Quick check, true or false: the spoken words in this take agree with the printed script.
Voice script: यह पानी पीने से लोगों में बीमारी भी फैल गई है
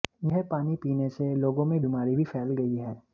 true